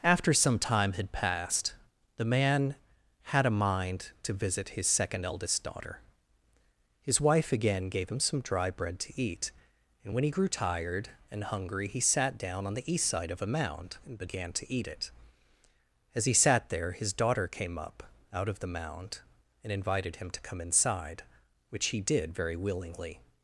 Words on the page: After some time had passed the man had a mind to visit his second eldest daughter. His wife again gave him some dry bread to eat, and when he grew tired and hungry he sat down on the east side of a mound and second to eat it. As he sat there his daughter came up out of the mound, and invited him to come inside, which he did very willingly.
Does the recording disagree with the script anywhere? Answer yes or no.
yes